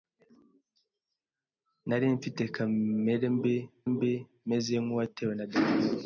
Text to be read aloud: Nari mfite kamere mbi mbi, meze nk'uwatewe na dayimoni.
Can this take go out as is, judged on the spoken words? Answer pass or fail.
pass